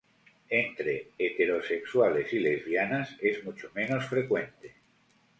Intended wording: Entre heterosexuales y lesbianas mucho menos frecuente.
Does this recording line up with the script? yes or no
no